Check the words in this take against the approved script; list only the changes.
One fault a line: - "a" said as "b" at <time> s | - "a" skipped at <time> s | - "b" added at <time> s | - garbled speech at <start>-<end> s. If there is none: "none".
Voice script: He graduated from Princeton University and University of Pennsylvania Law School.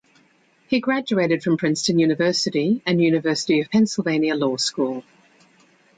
none